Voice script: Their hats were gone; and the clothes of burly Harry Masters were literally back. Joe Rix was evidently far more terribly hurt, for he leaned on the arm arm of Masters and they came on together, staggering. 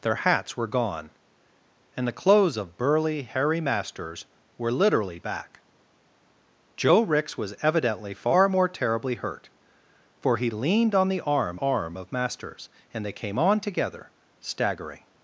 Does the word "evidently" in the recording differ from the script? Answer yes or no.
no